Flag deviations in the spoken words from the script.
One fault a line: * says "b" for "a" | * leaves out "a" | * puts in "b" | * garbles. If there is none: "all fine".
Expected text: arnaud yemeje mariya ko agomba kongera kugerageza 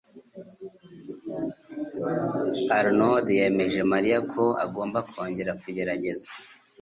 all fine